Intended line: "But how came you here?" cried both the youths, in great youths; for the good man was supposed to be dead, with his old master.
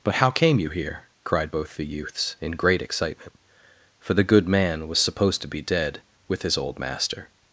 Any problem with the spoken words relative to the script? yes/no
yes